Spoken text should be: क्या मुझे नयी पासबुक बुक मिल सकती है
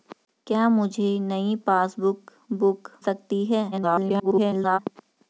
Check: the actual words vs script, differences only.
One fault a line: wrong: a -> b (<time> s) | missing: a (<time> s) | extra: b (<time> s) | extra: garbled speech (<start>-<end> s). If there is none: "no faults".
missing: मिल (2.9 s)
extra: garbled speech (3.7-4.8 s)